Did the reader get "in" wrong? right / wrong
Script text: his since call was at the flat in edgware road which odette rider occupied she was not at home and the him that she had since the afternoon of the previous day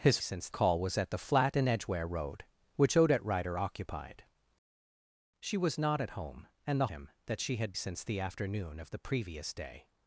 right